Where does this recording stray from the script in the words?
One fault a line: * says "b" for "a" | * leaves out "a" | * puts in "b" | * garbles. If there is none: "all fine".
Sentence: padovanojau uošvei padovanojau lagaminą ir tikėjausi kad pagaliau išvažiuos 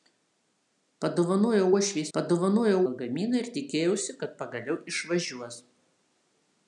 all fine